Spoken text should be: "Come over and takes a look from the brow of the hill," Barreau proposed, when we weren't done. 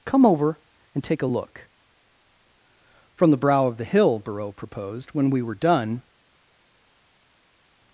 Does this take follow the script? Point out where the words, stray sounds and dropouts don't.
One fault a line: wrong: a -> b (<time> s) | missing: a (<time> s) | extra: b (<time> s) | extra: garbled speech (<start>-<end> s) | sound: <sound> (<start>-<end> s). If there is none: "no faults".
wrong: takes -> take (1.0 s)
wrong: weren't -> were (5.4 s)